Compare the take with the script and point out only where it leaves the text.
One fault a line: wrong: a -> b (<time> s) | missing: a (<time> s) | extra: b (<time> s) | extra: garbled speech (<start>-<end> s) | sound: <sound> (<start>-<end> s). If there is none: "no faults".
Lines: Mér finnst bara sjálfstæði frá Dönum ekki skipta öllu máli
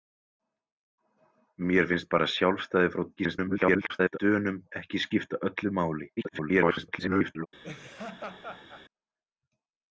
extra: garbled speech (3.2-4.2 s)
extra: garbled speech (6.2-7.5 s)
sound: laugh (7.6-8.8 s)